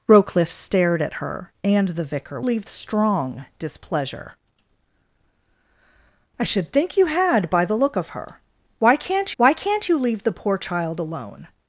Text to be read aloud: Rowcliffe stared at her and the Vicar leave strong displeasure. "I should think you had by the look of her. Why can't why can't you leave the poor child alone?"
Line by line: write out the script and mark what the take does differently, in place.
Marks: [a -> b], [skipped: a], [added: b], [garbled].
Rowcliffe stared at her and the Vicar leave strong displeasure. "I should think you had by the look of her. Why can't why can't you leave the poor child alone?"